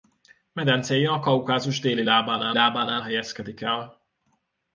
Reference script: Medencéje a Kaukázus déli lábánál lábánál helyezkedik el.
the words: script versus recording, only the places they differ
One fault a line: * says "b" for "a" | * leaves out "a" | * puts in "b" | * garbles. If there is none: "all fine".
all fine